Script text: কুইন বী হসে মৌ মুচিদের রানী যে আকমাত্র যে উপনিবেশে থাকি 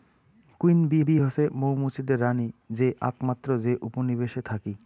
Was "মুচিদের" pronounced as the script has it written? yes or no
yes